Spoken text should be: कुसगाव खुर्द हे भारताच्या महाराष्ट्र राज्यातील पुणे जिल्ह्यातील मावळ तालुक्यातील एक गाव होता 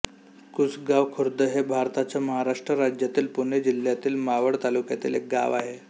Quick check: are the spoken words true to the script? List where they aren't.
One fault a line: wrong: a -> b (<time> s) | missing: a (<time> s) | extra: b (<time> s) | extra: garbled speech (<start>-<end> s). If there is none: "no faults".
wrong: होता -> आहे (5.5 s)